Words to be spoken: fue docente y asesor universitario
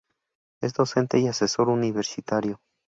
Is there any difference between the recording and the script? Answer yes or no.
yes